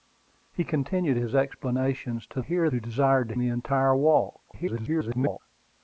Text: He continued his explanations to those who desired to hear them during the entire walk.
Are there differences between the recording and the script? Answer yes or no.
yes